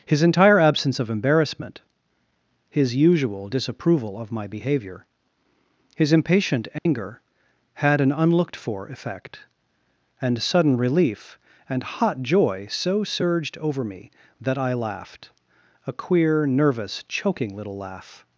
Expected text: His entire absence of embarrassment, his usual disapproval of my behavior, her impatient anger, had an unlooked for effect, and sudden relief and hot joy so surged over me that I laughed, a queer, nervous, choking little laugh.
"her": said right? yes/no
no